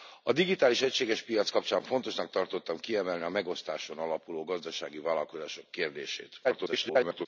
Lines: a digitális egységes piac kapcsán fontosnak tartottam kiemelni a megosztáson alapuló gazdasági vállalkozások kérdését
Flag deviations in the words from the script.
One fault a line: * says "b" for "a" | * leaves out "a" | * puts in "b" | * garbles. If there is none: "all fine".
* garbles